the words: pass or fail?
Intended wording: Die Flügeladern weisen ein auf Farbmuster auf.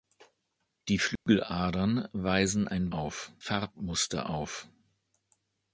pass